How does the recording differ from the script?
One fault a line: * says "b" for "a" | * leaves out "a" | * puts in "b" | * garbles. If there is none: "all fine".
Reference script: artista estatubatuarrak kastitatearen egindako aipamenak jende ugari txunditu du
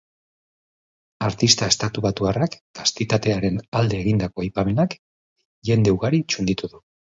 * puts in "alde"